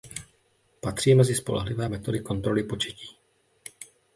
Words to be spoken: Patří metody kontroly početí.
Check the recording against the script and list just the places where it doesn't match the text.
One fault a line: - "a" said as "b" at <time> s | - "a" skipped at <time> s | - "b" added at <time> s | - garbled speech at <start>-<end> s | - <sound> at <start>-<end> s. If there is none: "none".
- "mezi spolehlivé" added at 1.1 s